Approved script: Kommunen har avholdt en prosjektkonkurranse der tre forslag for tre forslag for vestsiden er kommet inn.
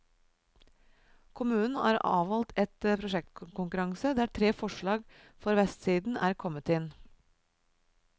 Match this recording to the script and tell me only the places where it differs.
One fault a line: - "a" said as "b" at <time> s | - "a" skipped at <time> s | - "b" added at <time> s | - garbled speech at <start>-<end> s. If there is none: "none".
- "tre forslag for" skipped at 5.6 s